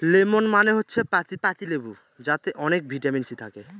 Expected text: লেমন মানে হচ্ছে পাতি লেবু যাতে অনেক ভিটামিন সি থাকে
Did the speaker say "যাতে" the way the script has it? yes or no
yes